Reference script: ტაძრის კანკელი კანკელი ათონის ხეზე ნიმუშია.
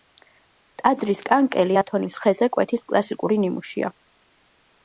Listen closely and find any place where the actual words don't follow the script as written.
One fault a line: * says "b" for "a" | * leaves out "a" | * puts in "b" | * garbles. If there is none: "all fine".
* leaves out "კანკელი"
* puts in "კვეთის კლასიკური"